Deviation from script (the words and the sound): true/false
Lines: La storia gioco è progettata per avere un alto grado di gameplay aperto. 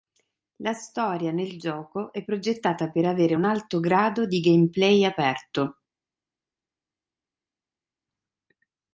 true